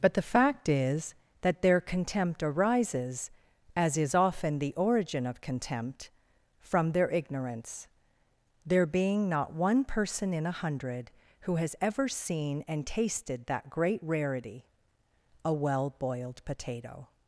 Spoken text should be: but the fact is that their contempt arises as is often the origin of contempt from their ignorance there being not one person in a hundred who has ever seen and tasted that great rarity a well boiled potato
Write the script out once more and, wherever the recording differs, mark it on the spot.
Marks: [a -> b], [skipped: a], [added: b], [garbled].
but the fact is that their contempt arises as is often the origin of contempt from their ignorance there being not one person in a hundred who has ever seen and tasted that great rarity a well boiled potato